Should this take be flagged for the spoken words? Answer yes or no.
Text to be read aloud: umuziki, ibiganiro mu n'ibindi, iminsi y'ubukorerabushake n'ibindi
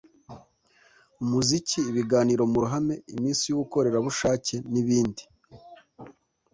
yes